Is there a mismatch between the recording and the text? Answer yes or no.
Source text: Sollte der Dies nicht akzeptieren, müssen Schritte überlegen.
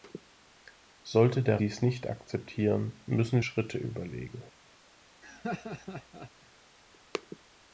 no